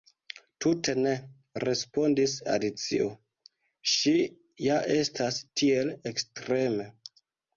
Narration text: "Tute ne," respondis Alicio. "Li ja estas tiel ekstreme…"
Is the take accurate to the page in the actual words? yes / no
no